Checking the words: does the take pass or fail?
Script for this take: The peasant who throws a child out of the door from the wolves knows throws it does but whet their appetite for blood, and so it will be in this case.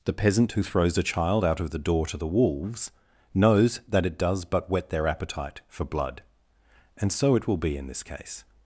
fail